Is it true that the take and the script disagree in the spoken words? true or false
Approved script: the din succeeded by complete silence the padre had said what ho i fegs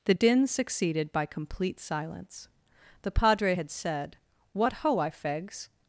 false